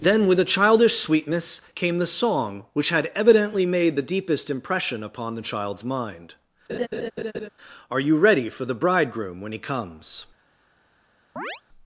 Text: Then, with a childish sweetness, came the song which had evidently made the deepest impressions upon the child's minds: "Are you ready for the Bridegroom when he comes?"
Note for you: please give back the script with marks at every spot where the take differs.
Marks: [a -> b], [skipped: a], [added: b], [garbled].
Then, with a childish sweetness, came the song which had evidently made the deepest [impressions -> impression] upon the child's [minds: -> mind] "Are you ready for the Bridegroom when he comes?"